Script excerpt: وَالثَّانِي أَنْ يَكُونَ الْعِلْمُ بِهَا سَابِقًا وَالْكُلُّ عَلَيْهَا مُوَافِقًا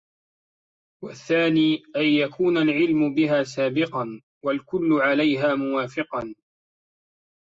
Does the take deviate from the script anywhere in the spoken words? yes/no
no